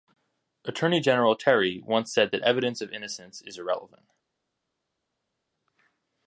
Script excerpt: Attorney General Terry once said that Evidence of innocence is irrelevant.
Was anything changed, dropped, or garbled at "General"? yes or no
no